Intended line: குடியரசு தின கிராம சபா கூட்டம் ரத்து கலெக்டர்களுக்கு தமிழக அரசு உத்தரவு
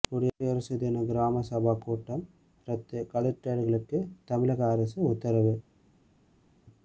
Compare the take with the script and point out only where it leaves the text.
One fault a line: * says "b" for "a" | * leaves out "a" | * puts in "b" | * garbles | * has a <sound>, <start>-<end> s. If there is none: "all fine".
all fine